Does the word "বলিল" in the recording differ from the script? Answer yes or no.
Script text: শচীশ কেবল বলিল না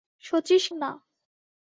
yes